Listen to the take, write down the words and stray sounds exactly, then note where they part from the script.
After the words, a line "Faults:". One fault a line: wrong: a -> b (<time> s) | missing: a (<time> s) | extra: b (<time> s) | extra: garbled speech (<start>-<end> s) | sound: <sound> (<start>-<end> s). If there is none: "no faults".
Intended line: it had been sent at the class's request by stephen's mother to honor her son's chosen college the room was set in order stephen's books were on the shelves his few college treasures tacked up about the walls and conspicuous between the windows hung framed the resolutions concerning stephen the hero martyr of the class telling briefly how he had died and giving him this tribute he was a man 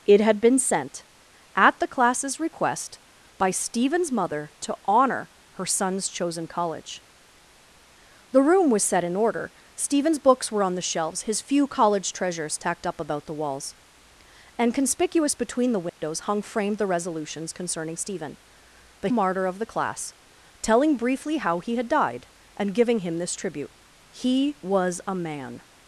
it had been sent at the class's request by stephen's mother to honor her son's chosen college the room was set in order stephen's books were on the shelves his few college treasures tacked up about the walls and conspicuous between the windows hung framed the resolutions concerning stephen the martyr of the class telling briefly how he had died and giving him this tribute he was a man
Faults:
sound: dropout (15.9-16.0 s)
missing: hero (19.1 s)